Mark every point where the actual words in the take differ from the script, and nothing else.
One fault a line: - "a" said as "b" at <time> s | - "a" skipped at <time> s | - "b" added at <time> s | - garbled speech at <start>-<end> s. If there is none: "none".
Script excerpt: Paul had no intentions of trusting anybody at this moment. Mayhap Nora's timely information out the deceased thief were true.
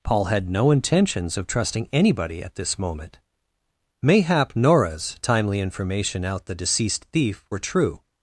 none